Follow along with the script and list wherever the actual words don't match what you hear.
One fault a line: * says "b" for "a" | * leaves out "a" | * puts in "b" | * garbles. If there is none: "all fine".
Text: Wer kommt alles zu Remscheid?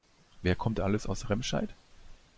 * says "aus" for "zu"